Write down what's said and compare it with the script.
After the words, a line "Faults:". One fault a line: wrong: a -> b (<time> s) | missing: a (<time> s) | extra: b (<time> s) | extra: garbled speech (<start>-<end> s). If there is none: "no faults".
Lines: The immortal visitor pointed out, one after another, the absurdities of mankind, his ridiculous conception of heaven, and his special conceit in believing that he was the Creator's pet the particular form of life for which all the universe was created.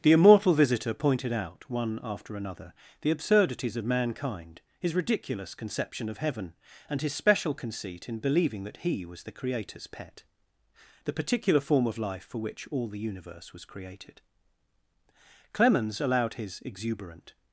The immortal visitor pointed out, one after another, the absurdities of mankind, his ridiculous conception of heaven, and his special conceit in believing that he was the Creator's pet the particular form of life for which all the universe was created. Clemens allowed his exuberant
Faults:
extra: Clemens allowed his exuberant (15.5 s)